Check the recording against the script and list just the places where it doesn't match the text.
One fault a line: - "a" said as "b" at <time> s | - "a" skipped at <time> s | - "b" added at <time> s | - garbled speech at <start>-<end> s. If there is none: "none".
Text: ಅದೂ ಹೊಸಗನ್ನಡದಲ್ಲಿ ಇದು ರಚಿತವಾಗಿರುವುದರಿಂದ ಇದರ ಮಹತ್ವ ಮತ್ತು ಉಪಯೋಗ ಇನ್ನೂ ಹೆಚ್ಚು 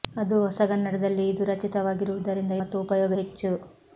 - "ಇದರ ಮಹತ್ವ" skipped at 2.5 s
- "ಇನ್ನೂ" skipped at 3.1 s